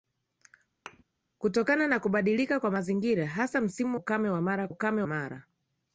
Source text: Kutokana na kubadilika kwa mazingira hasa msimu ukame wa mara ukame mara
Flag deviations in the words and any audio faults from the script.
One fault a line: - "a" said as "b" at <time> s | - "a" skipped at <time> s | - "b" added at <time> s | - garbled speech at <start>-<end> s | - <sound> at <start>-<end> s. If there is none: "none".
- thud at 0.9-1.0 s